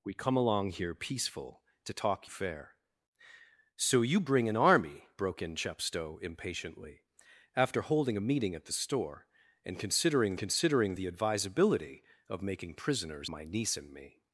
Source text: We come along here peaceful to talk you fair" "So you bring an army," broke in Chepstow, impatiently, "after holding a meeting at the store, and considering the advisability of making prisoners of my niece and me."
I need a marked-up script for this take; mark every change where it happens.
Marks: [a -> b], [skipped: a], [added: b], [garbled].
We come along here peaceful to talk [skipped: you] fair" "So you bring an army," broke in Chepstow, impatiently, "after holding a meeting at the store, and considering [added: considering] the advisability of making prisoners [skipped: of] my niece and me."